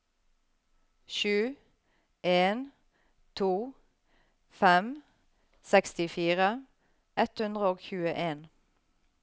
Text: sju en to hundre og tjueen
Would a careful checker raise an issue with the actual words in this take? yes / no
yes